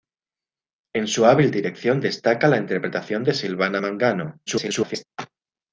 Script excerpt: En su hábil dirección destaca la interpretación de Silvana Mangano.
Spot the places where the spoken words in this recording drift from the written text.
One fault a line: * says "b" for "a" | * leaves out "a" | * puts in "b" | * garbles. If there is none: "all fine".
* garbles